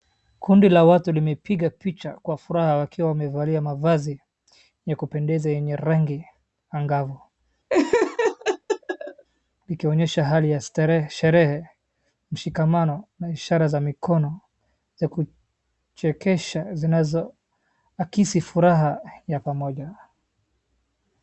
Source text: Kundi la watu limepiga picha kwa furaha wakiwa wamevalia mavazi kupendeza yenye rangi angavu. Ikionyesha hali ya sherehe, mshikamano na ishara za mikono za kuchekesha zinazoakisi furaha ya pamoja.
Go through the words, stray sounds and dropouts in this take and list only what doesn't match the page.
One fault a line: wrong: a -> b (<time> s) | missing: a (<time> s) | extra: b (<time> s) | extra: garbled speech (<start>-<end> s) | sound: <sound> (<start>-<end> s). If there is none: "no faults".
extra: ya (4.8 s)
sound: laugh (7.7-9.2 s)